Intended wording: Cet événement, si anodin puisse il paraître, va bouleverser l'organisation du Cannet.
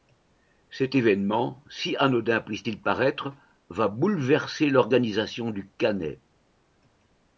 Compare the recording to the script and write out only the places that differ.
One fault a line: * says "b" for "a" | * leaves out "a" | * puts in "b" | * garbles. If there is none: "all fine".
* puts in "t"